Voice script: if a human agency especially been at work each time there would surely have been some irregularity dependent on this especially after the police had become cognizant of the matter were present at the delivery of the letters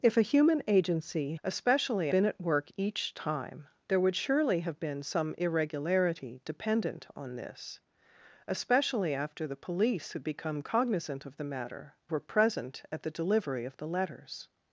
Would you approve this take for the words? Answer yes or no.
yes